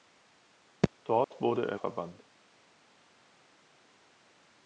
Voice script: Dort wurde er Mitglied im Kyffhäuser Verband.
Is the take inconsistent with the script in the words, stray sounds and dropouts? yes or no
yes